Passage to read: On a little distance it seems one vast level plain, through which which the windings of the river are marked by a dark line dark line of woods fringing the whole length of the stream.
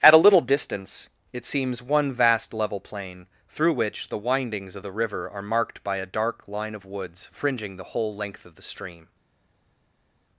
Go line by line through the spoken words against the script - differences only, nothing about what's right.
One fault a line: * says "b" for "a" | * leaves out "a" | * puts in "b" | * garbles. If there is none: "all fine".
* says "At" for "On"
* leaves out "which"
* leaves out "dark line"